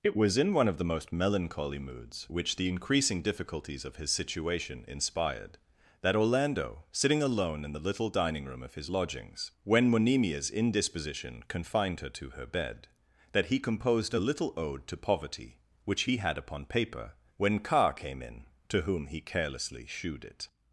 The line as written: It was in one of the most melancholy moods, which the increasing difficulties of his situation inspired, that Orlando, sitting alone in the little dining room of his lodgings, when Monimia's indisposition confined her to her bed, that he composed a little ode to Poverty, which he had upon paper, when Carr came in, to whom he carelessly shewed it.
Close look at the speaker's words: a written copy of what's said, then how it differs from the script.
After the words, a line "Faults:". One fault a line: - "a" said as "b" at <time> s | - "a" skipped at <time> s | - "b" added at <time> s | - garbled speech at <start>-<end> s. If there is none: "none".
It was in one of the most melancholy moods, which the increasing difficulties of his situation inspired, that Orlando, sitting alone in the little dining room of his lodgings, when Monimia's indisposition confined her to her bed, that he composed a little ode to Poverty, which he had upon paper, when Carr came in, to whom he carelessly shewed it.
Faults:
none